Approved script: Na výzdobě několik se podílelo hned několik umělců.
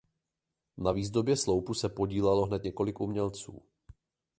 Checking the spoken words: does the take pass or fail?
fail